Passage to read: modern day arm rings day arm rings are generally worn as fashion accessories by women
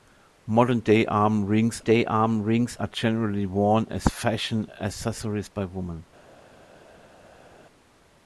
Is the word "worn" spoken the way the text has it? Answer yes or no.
yes